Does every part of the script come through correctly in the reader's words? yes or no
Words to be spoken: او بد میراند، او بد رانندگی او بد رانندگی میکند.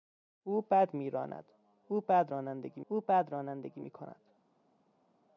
yes